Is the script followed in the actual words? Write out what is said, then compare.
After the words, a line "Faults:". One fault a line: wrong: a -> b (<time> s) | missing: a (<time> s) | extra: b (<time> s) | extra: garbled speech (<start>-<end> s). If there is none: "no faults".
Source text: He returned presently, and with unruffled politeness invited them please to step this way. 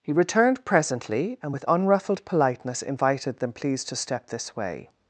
He returned presently, and with unruffled politeness invited them please to step this way.
Faults:
no faults